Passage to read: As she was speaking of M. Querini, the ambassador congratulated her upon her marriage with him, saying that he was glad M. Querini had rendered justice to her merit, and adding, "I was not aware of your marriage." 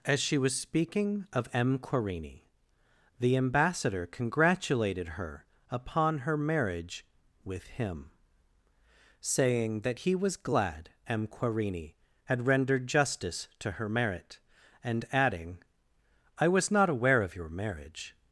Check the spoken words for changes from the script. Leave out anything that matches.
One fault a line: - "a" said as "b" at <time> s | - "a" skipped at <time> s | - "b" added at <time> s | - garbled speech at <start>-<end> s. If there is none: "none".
none